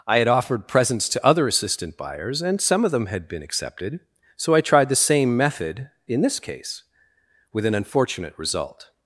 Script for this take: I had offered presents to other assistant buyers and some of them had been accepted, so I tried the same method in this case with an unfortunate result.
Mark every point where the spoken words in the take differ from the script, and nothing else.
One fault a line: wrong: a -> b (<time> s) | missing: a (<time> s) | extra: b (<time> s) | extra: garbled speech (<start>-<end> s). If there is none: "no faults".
no faults